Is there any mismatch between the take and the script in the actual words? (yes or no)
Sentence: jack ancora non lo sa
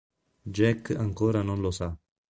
no